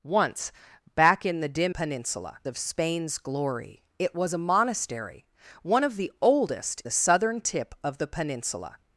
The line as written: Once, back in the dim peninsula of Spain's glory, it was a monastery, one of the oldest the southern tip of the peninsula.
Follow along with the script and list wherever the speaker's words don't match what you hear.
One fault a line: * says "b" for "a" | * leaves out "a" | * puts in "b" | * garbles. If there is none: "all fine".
all fine